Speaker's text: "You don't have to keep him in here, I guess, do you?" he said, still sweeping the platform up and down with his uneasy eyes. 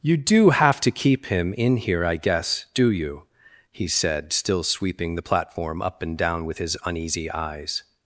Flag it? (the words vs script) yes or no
yes